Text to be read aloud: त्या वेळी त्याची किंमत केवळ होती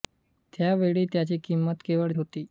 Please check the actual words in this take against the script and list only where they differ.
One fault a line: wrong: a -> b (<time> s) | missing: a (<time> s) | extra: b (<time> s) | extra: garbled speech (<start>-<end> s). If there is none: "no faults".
no faults